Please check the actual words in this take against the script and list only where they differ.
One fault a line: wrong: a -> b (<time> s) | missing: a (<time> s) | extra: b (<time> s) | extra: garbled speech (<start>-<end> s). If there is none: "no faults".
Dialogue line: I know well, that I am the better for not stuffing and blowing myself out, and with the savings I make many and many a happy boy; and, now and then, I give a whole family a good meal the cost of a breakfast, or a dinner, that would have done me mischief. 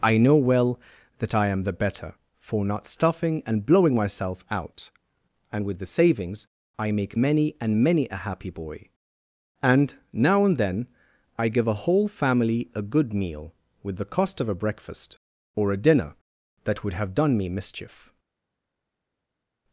extra: with (13.8 s)